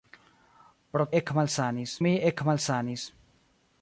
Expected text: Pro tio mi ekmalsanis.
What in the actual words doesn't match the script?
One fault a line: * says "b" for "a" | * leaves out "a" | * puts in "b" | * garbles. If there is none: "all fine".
* says "ekmalsanis" for "tio"